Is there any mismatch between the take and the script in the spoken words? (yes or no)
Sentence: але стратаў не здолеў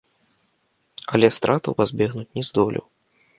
yes